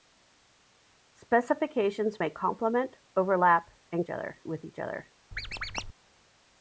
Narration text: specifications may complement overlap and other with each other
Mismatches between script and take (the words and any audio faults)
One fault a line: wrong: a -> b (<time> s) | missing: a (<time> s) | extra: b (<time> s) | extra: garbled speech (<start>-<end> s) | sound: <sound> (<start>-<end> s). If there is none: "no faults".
sound: squeak (5.3-5.9 s)